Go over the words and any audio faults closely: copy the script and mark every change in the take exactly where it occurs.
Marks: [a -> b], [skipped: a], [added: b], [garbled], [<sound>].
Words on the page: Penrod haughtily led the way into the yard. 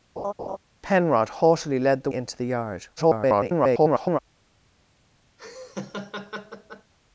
[laugh] Penrod haughtily led the [skipped: way] into the yard. [garbled] [laugh]